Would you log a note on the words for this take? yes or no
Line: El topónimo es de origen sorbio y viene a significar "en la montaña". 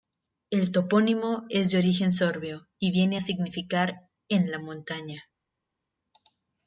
no